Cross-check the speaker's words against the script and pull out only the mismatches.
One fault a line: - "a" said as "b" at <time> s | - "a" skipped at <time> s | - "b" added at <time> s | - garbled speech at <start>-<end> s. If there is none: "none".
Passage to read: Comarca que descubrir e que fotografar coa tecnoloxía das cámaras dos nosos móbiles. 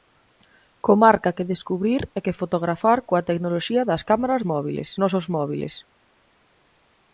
- "dos" said as "móbiles" at 4.5 s